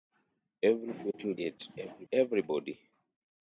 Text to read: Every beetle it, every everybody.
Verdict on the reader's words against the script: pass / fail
pass